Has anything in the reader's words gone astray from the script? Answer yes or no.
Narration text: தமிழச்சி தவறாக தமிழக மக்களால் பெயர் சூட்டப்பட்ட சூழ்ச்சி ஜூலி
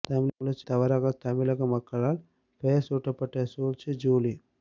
no